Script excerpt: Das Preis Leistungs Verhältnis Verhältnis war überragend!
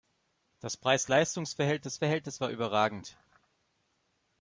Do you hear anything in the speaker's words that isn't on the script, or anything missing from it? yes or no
no